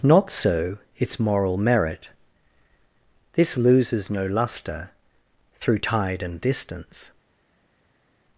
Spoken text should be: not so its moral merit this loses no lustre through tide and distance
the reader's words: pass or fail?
pass